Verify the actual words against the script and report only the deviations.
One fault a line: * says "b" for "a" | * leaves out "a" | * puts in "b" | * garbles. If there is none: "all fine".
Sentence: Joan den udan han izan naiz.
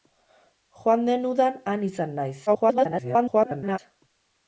* garbles